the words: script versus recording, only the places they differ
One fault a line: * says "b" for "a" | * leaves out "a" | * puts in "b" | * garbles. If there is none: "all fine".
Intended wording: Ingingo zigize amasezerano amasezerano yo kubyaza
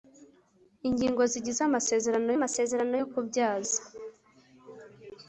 all fine